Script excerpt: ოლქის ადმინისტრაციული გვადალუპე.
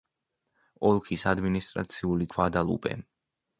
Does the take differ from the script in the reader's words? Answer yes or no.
no